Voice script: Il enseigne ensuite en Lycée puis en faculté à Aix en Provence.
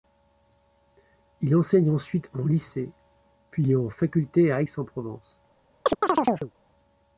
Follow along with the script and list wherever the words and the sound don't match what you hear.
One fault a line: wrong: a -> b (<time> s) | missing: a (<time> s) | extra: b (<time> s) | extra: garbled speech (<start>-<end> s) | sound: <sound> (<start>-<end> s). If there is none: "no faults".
sound: chirp (5.9-6.5 s)